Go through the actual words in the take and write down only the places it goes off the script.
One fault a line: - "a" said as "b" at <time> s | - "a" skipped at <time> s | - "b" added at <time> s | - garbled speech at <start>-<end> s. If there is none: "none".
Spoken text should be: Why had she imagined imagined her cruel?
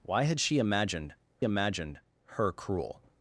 none